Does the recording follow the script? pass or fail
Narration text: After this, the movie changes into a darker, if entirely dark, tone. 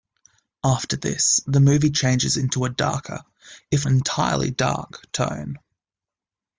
pass